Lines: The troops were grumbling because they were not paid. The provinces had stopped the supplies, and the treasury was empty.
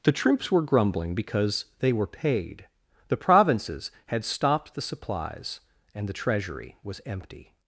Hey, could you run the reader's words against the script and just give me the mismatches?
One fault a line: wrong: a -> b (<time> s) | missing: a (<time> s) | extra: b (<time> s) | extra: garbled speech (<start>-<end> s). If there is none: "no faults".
missing: not (2.1 s)